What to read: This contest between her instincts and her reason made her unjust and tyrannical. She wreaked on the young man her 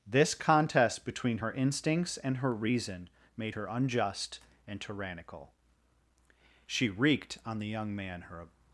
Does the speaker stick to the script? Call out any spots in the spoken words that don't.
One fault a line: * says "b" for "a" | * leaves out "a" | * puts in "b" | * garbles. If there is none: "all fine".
all fine